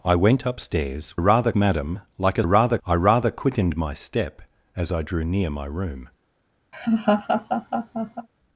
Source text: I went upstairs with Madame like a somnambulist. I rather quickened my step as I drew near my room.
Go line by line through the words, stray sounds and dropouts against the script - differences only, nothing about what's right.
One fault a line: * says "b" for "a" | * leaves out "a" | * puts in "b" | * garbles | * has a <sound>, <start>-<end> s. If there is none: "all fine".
* says "rather" for "with"
* says "rather" for "somnambulist"
* has a laugh, 6.7-8.3 s